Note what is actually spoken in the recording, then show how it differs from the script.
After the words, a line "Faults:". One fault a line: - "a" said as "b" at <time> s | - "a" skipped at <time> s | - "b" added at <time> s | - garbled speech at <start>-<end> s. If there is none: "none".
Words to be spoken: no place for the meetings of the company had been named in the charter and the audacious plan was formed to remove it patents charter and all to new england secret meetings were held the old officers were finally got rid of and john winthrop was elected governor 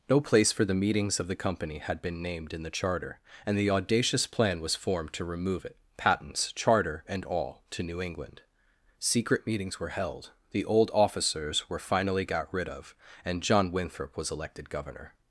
no place for the meetings of the company had been named in the charter and the audacious plan was formed to remove it patents charter and all to new england secret meetings were held the old officers were finally got rid of and john winthrop was elected governor
Faults:
none